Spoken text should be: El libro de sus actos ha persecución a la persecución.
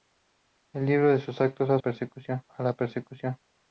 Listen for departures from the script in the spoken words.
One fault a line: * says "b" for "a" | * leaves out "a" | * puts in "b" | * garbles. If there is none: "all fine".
all fine